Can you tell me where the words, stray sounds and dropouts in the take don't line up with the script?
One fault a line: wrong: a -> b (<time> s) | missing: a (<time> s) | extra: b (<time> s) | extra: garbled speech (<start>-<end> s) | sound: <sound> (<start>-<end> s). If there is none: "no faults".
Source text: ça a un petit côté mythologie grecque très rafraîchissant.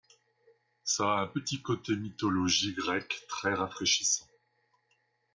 no faults